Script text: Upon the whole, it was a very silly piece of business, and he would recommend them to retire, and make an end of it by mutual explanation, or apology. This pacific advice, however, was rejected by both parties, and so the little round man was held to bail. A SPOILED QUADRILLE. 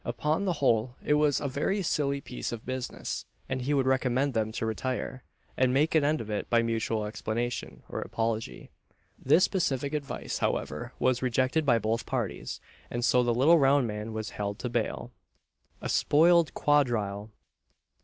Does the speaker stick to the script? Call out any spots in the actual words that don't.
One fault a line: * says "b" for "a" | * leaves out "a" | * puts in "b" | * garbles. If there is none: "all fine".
all fine